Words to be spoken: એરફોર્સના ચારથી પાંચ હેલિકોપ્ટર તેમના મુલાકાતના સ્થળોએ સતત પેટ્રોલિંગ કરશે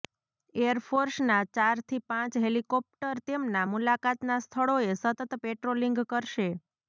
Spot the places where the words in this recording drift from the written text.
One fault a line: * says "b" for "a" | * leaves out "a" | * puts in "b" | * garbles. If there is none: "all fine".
all fine